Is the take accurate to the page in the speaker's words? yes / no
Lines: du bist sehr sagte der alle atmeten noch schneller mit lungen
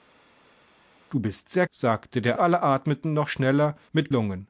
yes